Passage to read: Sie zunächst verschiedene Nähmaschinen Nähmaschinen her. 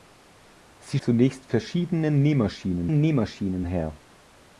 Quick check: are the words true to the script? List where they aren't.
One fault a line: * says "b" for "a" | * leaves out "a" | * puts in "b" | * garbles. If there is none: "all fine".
all fine